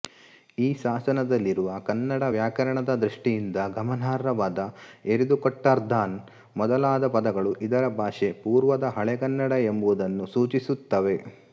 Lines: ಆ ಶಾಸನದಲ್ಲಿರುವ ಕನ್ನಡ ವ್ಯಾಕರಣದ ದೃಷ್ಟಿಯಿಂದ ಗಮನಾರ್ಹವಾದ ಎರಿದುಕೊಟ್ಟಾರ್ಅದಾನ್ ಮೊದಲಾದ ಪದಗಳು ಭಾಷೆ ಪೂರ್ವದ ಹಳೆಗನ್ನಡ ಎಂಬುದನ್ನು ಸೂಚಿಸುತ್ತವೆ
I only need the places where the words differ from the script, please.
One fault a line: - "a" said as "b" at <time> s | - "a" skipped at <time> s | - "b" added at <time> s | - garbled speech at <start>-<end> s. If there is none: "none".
- "ಆ" said as "ಈ" at 0.6 s
- "ಇದರ" added at 7.6 s